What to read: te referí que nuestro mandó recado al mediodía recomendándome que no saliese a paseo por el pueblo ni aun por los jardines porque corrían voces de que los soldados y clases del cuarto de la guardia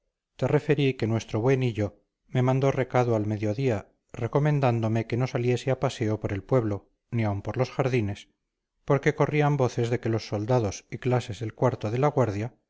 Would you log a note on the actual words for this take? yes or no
yes